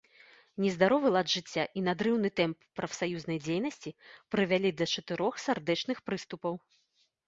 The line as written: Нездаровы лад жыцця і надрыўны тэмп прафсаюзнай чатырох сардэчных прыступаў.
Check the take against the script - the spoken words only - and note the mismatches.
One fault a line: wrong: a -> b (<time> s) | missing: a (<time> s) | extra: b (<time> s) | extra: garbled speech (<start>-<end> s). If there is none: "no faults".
extra: дзейнасці прывялі да (3.5 s)